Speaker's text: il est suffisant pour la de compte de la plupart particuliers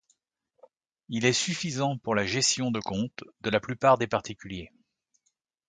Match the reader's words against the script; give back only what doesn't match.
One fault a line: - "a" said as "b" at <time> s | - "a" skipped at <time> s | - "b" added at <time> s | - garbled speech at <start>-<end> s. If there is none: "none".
- "gestion" added at 2.2 s
- "des" added at 4.0 s